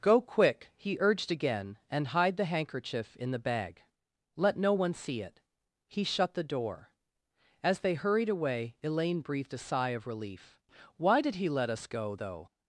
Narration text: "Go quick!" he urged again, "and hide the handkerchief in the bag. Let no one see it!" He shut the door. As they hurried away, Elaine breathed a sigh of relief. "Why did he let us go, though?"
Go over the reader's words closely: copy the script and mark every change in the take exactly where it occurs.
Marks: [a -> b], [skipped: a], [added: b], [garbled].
"Go quick!" he urged again, "and hide the handkerchief in the bag. Let no one see it!" He shut the door. As they hurried away, Elaine breathed a sigh of relief. "Why did he let us go, though?"